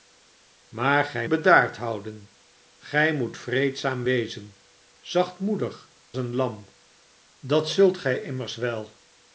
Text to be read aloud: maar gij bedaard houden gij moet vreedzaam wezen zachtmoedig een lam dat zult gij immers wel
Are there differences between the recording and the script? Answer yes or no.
no